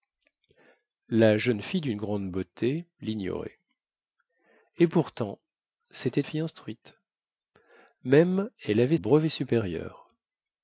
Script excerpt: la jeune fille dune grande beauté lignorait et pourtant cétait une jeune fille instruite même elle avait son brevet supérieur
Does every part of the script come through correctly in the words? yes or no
no